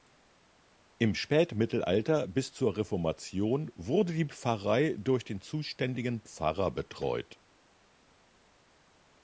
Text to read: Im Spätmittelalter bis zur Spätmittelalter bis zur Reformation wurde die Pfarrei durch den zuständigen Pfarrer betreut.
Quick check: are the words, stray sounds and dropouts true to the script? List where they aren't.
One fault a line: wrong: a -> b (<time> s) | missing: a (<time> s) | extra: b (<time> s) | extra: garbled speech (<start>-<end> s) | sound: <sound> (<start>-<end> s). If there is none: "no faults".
missing: Spätmittelalter bis zur (2.8 s)